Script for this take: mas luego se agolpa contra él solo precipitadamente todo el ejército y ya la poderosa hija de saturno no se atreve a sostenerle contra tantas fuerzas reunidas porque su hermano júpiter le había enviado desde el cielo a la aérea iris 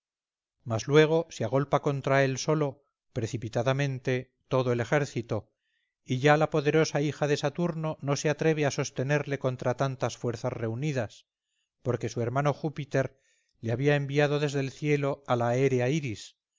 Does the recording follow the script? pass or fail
pass